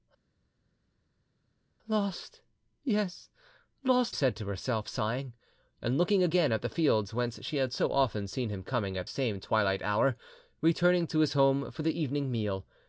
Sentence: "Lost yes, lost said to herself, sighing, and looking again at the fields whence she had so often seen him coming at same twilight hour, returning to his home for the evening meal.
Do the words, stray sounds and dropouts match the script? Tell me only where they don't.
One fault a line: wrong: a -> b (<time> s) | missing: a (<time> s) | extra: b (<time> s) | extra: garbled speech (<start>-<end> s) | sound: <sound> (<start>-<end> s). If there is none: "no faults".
no faults